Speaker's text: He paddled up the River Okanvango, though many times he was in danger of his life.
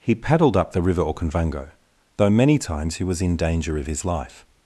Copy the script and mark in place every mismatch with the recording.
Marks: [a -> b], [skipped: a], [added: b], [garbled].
He paddled up the River Okanvango, though many times he was in danger of his life.